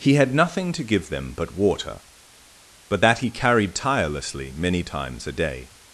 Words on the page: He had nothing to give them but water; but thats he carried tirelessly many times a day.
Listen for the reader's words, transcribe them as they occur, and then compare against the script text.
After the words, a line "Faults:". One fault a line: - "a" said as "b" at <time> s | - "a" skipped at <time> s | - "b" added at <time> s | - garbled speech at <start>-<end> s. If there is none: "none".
He had nothing to give them but water; but that he carried tirelessly many times a day.
Faults:
- "thats" said as "that" at 3.0 s